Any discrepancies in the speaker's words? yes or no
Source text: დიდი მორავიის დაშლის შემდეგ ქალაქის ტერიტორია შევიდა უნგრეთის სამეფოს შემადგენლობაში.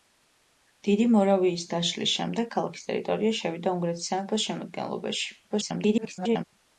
yes